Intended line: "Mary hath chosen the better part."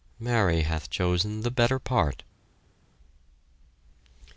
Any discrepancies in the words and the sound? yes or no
no